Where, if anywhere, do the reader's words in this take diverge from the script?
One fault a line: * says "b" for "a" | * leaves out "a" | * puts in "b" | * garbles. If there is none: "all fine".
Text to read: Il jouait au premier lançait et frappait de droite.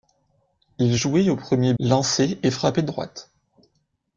all fine